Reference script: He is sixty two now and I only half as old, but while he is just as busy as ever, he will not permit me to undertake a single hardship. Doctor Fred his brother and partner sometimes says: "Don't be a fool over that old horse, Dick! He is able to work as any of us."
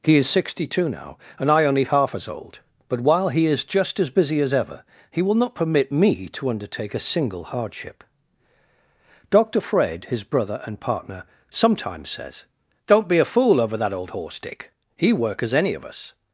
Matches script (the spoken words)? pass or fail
fail